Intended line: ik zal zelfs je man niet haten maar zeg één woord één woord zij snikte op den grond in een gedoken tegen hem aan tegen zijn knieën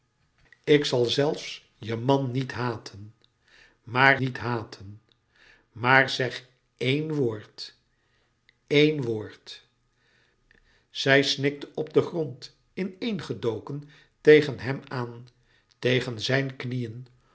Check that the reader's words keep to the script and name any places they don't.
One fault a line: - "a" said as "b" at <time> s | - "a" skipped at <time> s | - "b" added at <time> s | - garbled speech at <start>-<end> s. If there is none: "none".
- "niet haten maar" added at 4.2 s